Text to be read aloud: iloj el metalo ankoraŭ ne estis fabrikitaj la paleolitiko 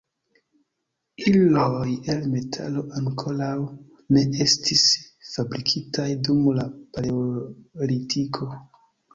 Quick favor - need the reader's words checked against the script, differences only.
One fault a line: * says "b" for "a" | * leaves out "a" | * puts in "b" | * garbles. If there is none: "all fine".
* puts in "dum"